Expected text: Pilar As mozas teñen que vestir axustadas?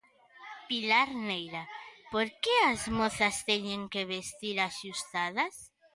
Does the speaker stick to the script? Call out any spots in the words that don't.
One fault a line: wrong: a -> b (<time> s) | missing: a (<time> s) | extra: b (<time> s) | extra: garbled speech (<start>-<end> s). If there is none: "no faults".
extra: Neira Por que (1.3 s)